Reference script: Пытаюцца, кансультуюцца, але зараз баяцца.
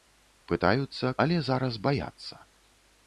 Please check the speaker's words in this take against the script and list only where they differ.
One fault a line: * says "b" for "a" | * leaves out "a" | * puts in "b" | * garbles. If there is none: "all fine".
* leaves out "кансультуюцца"